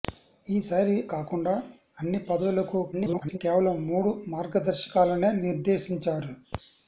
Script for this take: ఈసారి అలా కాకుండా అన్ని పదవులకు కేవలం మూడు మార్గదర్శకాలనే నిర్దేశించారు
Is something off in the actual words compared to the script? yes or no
yes